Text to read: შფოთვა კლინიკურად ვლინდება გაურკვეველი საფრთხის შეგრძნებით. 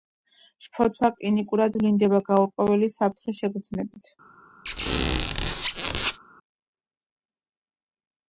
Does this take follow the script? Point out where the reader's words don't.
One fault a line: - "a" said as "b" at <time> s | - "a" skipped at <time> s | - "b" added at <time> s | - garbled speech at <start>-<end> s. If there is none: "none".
none